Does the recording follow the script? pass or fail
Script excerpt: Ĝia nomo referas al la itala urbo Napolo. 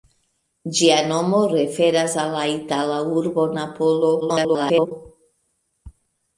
fail